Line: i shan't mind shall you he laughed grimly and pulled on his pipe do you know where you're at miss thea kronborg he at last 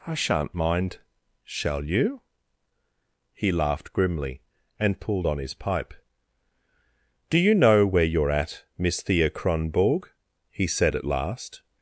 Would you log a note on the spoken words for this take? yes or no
yes